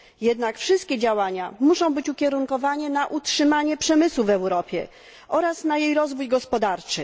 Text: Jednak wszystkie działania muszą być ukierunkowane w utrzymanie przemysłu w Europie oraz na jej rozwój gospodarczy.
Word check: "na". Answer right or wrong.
right